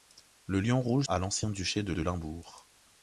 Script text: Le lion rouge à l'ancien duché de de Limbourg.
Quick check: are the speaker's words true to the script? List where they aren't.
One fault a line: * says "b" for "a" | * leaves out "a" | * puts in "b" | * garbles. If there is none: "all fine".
all fine